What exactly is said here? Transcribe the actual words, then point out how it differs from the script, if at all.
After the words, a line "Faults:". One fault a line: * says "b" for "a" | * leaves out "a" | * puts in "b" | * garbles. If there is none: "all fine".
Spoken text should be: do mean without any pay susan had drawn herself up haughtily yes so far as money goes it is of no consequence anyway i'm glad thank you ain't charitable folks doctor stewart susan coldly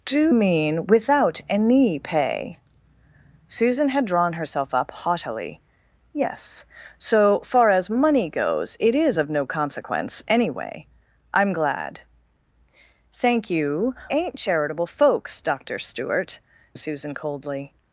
do mean without any pay susan had drawn herself up haughtily yes so far as money goes it is of no consequence anyway i'm glad thank you ain't charitable folks doctor stewart susan coldly
Faults:
all fine